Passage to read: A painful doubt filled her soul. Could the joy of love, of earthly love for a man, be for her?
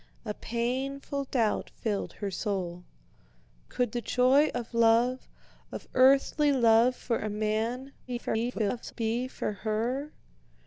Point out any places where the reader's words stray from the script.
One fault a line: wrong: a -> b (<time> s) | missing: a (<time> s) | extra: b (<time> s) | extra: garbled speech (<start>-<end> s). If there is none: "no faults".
extra: garbled speech (8.1-8.9 s)